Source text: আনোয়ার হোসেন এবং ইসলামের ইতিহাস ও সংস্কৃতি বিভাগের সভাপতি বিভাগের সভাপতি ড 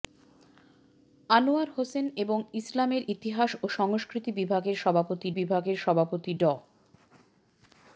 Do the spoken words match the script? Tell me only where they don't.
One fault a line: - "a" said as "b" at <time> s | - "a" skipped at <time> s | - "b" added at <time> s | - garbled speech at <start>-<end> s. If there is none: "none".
none